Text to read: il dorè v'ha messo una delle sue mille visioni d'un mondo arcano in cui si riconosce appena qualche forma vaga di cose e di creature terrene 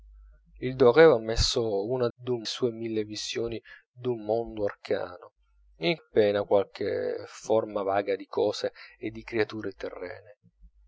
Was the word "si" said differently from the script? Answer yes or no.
yes